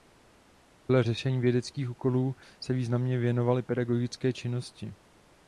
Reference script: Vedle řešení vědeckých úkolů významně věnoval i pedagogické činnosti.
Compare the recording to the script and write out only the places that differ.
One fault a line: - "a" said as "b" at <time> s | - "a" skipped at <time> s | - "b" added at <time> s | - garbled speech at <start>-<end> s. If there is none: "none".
- "se" added at 2.6 s